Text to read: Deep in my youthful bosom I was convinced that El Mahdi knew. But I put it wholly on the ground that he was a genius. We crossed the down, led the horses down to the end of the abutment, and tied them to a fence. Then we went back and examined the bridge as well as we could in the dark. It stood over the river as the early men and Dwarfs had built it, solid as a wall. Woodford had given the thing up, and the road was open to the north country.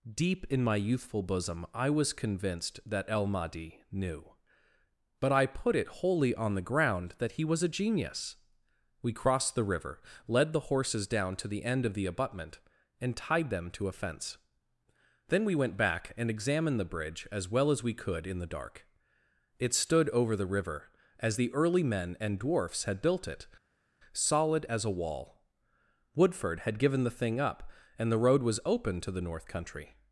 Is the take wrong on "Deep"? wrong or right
right